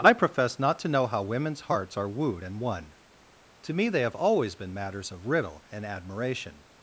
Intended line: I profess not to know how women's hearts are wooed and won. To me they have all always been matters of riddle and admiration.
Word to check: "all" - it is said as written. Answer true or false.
false